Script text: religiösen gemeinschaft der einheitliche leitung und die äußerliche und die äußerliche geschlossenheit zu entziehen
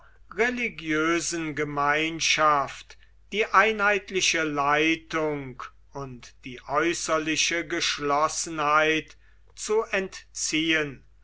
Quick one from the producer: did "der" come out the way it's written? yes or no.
no